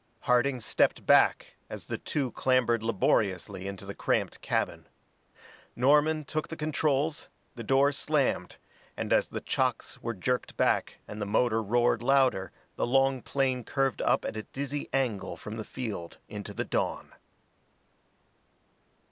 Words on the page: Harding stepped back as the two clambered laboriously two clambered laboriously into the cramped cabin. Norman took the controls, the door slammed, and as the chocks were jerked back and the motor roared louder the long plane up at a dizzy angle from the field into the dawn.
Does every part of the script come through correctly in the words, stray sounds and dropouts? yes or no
no